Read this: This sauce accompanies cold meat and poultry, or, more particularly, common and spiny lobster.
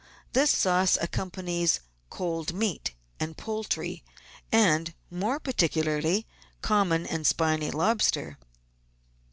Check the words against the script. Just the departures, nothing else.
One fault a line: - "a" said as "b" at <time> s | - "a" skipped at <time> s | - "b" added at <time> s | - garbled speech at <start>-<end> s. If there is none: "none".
- "or" said as "and" at 4.5 s